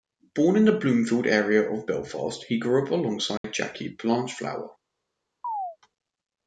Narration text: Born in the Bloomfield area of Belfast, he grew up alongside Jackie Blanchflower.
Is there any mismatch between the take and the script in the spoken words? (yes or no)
no